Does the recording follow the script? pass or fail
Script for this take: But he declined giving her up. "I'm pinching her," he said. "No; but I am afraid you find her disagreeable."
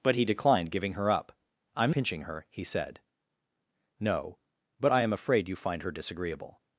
pass